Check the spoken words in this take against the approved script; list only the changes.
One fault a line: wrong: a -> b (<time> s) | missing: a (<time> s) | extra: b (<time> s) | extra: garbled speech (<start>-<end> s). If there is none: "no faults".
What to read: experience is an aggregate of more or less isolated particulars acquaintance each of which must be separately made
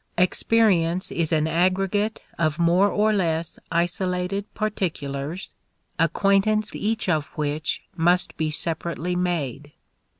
no faults